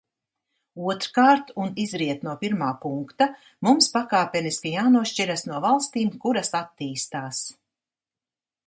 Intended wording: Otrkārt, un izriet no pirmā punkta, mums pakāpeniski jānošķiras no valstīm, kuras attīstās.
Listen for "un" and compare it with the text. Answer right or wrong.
right